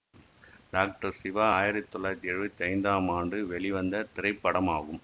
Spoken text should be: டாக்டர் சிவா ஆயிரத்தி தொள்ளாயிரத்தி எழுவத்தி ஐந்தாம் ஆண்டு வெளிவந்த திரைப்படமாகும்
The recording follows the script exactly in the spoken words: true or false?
true